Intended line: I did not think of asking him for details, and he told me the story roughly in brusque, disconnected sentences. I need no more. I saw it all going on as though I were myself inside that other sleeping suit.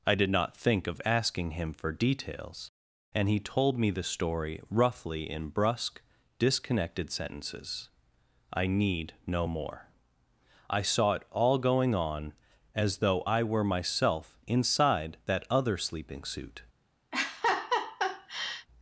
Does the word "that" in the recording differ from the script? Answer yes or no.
no